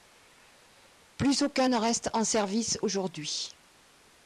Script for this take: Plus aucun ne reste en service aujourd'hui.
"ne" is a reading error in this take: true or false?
false